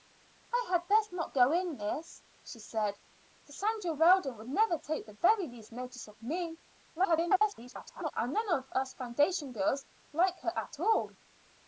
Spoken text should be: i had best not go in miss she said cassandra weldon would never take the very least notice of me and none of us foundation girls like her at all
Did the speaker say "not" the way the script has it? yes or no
yes